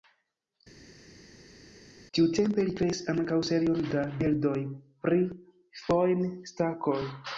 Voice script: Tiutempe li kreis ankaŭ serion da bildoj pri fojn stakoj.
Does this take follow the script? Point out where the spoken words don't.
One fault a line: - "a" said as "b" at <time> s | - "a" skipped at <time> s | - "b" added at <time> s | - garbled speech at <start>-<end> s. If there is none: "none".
none